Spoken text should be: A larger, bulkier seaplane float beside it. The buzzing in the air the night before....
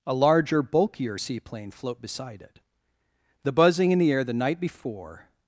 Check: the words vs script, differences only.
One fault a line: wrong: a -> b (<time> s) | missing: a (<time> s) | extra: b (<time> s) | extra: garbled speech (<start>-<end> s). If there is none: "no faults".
no faults